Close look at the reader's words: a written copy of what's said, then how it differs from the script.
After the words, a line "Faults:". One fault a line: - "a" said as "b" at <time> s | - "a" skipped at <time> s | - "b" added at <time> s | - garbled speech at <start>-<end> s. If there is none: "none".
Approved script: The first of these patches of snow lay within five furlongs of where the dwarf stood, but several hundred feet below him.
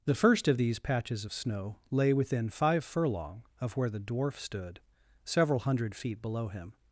The first of these patches of snow lay within five furlong of where the dwarf stood, several hundred feet below him.
Faults:
- "furlongs" said as "furlong" at 2.8 s
- "but" skipped at 4.8 s